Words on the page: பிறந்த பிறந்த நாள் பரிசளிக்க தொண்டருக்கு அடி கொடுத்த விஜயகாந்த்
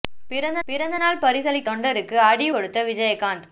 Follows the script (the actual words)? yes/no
yes